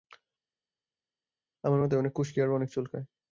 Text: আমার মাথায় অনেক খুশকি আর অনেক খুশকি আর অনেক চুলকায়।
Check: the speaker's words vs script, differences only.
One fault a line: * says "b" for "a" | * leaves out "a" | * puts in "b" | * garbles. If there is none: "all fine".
* leaves out "খুশকি আর অনেক"